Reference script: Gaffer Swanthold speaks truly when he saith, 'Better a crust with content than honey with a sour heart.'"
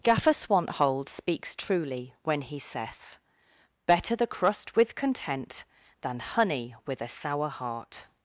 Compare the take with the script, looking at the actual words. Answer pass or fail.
fail